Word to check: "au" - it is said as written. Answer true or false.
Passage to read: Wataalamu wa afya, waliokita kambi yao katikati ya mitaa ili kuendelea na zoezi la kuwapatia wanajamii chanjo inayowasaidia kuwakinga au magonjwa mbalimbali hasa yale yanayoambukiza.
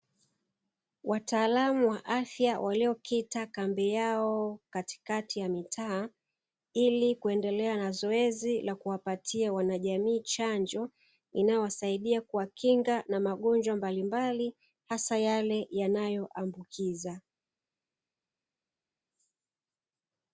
false